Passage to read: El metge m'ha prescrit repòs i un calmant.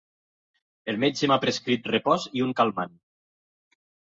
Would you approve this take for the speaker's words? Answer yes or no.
yes